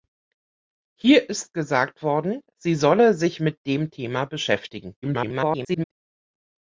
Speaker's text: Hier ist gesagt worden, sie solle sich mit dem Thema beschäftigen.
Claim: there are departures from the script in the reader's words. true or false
true